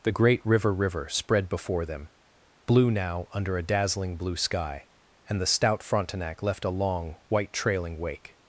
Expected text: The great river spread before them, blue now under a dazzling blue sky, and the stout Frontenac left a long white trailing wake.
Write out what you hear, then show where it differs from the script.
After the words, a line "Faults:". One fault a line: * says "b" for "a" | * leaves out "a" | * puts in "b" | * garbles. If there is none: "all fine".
The great river river spread before them, blue now under a dazzling blue sky, and the stout Frontenac left a long white trailing wake.
Faults:
* puts in "river"